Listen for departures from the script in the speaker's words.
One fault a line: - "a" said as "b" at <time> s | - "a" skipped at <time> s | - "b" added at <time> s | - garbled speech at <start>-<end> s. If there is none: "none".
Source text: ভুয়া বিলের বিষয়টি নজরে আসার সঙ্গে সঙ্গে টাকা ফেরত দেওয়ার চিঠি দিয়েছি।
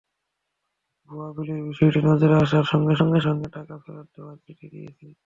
- "সঙ্গে" added at 3.2 s